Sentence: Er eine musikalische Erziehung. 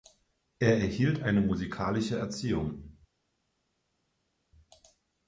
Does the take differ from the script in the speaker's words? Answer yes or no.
yes